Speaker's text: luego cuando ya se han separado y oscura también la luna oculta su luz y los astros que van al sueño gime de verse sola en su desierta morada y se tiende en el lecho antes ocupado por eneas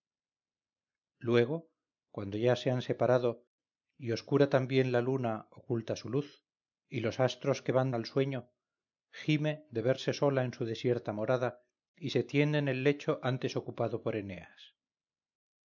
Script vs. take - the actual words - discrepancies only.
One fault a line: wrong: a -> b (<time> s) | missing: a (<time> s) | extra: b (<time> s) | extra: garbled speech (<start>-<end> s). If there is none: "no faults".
no faults